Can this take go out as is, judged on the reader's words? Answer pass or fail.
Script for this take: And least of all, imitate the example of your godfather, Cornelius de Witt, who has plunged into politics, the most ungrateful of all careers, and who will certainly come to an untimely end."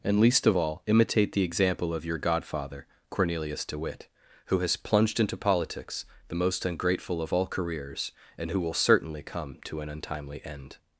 pass